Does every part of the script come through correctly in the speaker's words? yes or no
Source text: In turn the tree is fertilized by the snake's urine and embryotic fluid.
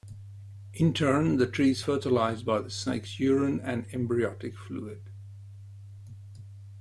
yes